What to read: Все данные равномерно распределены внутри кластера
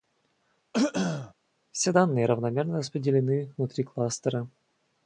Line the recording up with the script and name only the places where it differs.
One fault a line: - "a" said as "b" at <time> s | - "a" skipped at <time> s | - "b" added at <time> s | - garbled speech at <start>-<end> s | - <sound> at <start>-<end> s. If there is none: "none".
- throat clearing at 0.7-1.3 s